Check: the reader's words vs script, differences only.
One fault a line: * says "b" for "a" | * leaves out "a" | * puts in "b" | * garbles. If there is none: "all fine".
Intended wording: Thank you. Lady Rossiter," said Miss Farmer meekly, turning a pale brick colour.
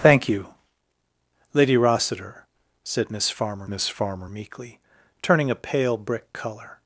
* puts in "Miss Farmer"